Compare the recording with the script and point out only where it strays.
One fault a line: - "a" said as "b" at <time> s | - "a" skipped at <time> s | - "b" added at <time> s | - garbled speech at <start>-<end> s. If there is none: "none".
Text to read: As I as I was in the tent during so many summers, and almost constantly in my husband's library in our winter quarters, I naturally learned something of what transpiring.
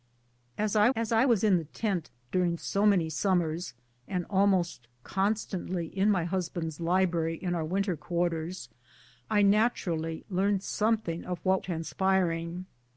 none